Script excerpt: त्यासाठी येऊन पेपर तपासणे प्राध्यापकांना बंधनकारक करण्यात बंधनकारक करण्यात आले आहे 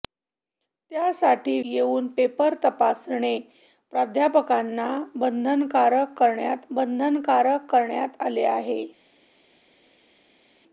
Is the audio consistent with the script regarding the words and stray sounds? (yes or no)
yes